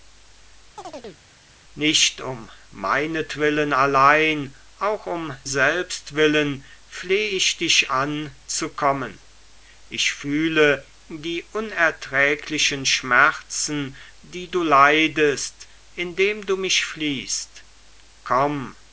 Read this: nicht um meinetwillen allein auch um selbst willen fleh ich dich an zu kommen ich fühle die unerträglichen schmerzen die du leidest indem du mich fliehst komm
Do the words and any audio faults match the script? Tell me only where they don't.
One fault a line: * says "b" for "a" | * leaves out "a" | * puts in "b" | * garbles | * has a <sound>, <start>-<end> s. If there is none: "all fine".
* has a chirp, 0.8-1.2 s